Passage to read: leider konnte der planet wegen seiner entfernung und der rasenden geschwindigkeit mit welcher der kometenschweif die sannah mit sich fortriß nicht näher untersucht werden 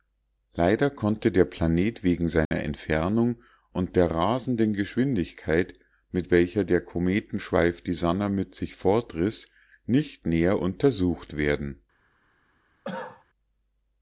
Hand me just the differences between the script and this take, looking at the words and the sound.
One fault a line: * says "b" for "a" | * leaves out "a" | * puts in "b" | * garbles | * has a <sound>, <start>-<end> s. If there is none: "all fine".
* has a dropout, 2.4-2.5 s
* has a cough, 12.8-13.2 s